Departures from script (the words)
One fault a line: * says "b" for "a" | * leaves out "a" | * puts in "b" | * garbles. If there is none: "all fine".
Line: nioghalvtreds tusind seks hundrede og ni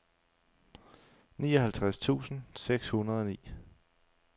all fine